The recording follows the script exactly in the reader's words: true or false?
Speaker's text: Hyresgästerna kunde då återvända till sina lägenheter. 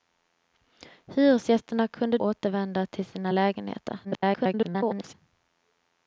false